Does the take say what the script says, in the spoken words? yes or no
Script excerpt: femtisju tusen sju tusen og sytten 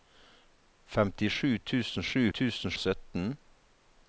yes